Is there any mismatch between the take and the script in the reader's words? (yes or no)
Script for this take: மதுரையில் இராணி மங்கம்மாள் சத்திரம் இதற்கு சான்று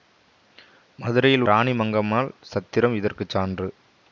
no